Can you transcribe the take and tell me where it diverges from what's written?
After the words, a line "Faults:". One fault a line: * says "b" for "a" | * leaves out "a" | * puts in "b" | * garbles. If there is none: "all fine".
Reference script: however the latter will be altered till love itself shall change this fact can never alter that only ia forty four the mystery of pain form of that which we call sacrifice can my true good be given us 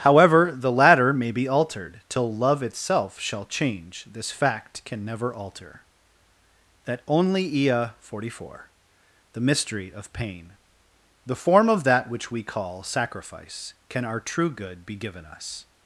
however the latter may be altered till love itself shall change this fact can never alter that only ia forty four the mystery of pain the form of that which we call sacrifice can our true good be given us
Faults:
* says "may" for "will"
* puts in "the"
* says "our" for "my"